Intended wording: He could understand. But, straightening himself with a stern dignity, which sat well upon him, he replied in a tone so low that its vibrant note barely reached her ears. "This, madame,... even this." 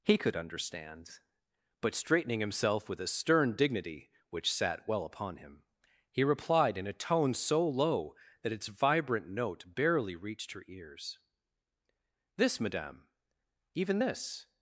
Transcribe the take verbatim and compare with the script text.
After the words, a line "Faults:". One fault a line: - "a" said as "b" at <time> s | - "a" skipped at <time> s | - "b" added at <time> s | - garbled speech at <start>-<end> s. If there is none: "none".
He could understand. But, straightening himself with a stern dignity, which sat well upon him, he replied in a tone so low that its vibrant note barely reached her ears. "This, madame,... even this."
Faults:
none